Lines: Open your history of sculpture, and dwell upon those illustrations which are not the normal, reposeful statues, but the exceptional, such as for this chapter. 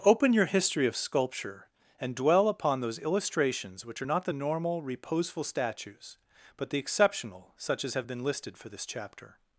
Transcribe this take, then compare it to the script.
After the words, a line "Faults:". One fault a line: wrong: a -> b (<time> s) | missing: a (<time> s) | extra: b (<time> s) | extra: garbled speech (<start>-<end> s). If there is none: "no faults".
Open your history of sculpture, and dwell upon those illustrations which are not the normal, reposeful statues, but the exceptional, such as have been listed for this chapter.
Faults:
extra: have been listed (7.9 s)